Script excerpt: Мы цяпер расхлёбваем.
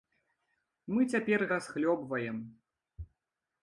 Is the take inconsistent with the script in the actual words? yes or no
no